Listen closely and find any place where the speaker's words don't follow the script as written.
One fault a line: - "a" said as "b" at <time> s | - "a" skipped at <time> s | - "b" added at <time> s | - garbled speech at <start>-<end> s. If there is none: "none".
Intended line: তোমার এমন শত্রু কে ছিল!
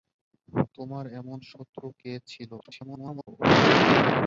- garbled speech at 2.6-3.3 s